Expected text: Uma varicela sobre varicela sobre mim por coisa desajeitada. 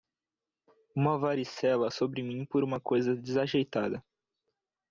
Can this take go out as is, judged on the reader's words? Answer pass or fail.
fail